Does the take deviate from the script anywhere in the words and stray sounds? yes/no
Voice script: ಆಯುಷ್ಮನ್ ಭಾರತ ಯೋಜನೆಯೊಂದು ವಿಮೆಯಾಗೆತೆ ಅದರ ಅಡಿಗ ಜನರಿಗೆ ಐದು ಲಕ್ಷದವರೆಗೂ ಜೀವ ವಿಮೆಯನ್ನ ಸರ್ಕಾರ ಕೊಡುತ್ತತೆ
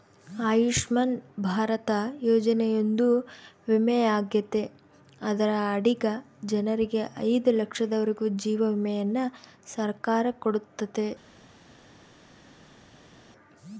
no